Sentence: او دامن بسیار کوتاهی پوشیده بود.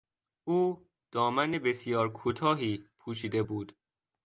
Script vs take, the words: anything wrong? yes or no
no